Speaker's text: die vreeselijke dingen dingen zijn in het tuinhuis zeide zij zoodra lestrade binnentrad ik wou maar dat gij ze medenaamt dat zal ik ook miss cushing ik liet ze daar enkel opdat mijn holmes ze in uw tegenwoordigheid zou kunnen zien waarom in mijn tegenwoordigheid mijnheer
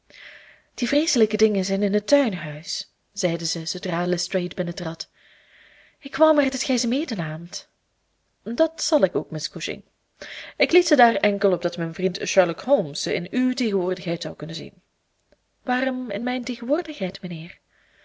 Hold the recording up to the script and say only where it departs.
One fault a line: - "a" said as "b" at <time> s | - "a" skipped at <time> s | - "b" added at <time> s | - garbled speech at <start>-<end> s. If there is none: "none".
- "dingen" skipped at 1.6 s
- "vriend sherlock" added at 11.9 s